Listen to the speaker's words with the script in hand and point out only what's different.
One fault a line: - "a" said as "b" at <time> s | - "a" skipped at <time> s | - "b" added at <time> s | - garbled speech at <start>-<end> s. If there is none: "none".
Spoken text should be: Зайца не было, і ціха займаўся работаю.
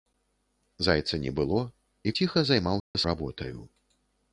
none